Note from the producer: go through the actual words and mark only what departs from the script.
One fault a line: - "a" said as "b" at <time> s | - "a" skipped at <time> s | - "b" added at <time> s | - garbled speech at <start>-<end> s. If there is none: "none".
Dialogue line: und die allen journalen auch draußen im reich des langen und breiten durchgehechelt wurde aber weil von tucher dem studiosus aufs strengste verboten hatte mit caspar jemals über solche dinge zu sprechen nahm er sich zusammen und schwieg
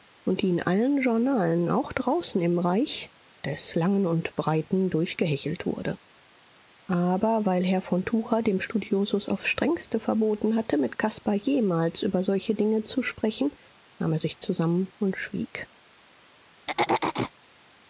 - "in" added at 0.5 s
- "herr" added at 7.6 s